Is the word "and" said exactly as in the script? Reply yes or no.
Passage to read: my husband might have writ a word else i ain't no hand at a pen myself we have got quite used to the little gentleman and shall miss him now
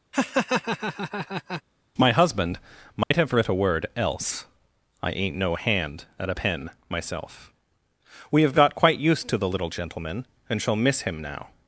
yes